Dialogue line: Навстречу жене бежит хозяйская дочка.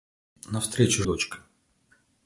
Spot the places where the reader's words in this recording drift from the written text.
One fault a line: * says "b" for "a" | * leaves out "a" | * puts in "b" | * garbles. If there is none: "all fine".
* leaves out "жене бежит хозяйская"